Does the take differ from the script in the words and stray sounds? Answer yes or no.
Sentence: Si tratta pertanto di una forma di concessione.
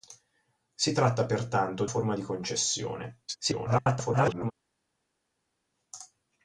yes